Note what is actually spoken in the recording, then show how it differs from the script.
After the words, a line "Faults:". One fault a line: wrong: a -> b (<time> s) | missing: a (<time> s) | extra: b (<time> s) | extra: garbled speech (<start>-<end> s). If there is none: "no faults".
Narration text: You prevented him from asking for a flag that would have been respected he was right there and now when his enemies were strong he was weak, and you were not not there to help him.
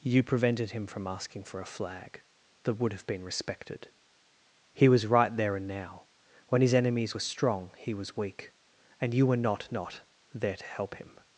You prevented him from asking for a flag that would have been respected he was right there and now when his enemies were strong he was weak, and you were not not there to help him.
Faults:
no faults